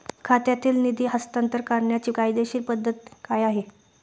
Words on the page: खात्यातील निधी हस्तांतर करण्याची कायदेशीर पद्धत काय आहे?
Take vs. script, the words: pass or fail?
pass